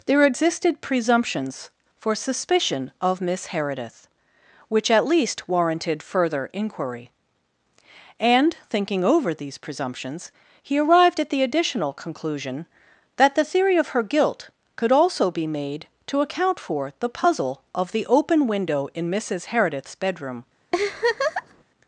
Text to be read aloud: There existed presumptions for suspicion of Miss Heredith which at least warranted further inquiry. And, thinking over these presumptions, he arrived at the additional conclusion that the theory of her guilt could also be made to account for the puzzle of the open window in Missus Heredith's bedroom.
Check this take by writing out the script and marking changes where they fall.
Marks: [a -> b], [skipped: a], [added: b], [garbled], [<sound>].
There existed presumptions for suspicion of Miss Heredith which at least warranted further inquiry. And, thinking over these presumptions, he arrived at the additional conclusion that the theory of her guilt could also be made to account for the puzzle of the open window in Missus Heredith's bedroom. [laugh]